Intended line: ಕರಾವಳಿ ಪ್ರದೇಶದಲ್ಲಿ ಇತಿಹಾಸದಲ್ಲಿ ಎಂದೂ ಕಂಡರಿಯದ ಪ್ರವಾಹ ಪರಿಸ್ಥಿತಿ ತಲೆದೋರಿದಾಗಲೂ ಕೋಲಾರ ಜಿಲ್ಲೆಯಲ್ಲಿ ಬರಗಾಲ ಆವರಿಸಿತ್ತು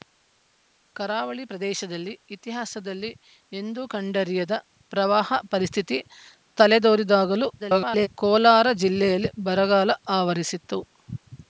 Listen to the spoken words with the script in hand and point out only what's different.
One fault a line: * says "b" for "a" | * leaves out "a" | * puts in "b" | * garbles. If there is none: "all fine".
* garbles